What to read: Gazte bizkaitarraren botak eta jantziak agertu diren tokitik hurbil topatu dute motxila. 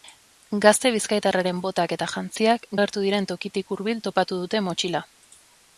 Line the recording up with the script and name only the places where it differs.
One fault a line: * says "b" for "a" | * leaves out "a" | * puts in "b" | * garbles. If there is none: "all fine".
all fine